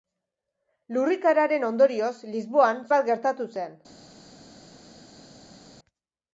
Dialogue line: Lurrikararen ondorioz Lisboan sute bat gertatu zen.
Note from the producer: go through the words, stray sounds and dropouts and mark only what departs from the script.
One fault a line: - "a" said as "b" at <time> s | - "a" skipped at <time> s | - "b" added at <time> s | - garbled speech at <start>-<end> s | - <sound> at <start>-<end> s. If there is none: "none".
- "sute" skipped at 2.8 s